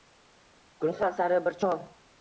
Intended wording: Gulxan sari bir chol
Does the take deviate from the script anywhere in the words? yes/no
no